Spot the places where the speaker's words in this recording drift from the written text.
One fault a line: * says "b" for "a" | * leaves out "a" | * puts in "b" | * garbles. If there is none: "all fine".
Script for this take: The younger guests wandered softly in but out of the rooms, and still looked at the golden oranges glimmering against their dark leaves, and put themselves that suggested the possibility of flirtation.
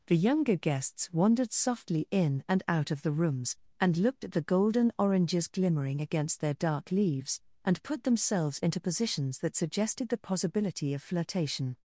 * says "and" for "but"
* leaves out "still"
* puts in "into positions"